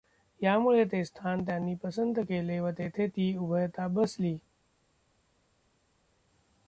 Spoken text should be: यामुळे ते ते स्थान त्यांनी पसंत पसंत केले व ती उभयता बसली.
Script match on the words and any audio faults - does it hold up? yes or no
no